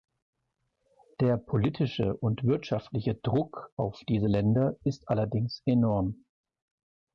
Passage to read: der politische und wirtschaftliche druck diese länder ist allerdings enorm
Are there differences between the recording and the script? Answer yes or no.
yes